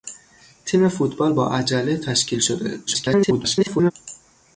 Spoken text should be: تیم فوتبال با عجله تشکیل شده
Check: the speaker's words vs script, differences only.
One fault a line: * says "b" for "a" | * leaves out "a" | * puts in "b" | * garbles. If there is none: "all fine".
* garbles